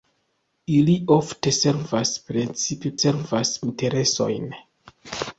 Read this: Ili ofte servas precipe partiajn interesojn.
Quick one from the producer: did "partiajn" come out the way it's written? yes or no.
no